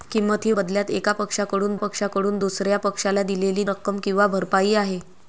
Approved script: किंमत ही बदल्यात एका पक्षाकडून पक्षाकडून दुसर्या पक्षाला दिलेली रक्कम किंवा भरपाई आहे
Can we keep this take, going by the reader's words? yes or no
yes